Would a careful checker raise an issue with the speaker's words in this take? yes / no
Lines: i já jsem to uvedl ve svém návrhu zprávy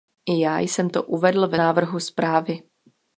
yes